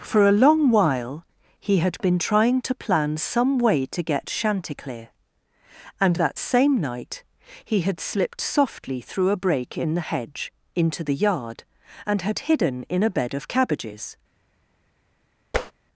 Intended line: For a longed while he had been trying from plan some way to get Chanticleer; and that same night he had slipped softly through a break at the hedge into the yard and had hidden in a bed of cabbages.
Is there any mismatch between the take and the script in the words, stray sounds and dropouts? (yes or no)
yes